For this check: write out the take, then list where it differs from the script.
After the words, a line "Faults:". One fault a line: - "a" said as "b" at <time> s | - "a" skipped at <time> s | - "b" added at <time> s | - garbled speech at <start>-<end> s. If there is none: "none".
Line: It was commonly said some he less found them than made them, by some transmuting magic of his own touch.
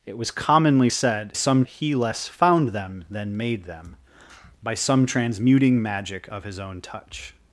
It was commonly said some he less found them than made them, by some transmuting magic of his own touch.
Faults:
none